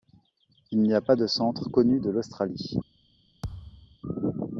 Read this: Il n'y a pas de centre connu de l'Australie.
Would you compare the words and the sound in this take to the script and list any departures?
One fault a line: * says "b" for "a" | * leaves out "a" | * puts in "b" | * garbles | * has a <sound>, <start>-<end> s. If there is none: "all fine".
* has a thud, 3.4-4.0 s